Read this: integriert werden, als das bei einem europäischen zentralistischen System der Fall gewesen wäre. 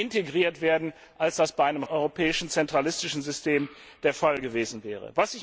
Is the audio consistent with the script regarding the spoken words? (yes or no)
yes